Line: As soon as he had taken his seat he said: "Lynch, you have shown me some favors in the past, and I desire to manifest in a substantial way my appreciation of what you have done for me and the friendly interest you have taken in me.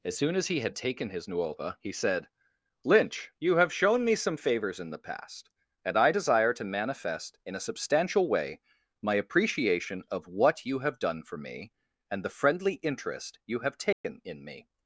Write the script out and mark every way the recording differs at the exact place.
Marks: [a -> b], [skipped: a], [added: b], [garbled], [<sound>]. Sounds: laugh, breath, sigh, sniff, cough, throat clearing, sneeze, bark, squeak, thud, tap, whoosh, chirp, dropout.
As soon as he had taken his [seat -> nuova] he said: "Lynch, you have shown me some favors in the past, and I desire to manifest in a substantial way my appreciation of what you have done for me and the friendly interest you have taken [dropout] in me.